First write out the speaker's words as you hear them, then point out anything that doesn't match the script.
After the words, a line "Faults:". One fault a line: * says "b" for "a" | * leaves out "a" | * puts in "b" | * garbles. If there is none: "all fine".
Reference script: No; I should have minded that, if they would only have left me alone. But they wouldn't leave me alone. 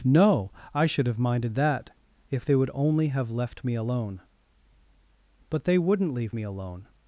No; I should have minded that, if they would only have left me alone. But they wouldn't leave me alone.
Faults:
all fine